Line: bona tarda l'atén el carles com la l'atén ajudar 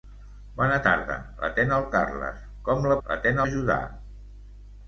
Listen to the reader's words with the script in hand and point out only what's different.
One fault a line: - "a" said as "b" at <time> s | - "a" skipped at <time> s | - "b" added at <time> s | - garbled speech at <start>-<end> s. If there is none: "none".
none